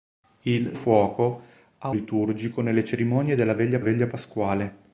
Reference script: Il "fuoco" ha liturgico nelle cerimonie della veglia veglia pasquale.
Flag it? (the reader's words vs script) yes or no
no